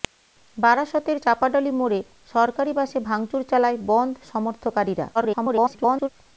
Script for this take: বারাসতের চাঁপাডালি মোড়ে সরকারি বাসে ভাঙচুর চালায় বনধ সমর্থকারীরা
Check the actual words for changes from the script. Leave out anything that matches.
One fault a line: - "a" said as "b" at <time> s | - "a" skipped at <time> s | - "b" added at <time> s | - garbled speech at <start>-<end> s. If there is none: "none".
- garbled speech at 5.1-6.1 s